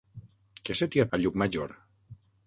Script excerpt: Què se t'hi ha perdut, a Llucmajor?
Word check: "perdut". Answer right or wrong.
wrong